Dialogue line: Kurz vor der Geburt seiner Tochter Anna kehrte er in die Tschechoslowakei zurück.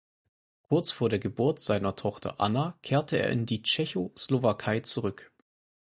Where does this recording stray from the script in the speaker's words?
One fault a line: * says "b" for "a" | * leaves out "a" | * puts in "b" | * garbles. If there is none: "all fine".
all fine